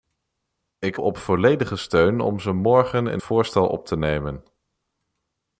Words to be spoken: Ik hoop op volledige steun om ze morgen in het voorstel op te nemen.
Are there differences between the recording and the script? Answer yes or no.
yes